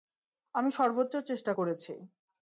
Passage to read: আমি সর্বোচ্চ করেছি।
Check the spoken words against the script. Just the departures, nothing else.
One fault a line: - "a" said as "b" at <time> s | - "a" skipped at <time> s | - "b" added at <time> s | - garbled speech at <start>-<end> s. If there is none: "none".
- "চেষ্টা" added at 1.3 s